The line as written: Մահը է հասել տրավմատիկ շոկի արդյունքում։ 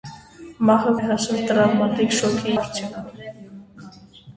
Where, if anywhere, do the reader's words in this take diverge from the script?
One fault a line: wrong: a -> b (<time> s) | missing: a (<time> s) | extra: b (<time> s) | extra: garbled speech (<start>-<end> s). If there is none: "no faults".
no faults